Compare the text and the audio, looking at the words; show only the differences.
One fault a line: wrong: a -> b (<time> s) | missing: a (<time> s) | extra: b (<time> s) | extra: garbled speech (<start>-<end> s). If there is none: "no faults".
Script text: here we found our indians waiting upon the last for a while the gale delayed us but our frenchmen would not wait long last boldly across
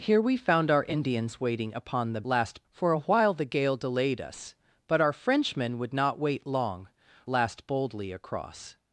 no faults